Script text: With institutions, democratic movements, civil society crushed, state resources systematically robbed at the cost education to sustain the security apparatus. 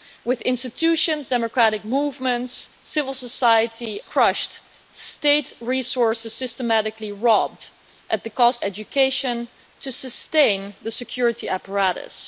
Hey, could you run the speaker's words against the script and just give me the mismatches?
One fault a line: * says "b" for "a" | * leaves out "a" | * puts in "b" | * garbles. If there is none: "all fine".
all fine